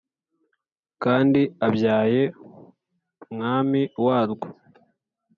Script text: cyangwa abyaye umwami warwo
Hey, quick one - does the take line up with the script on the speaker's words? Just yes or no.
no